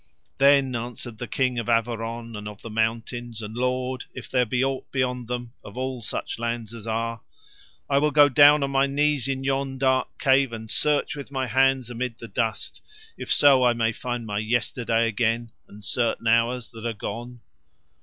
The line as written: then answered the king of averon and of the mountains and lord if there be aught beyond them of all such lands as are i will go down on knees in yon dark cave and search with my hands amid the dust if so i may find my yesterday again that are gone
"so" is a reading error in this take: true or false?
false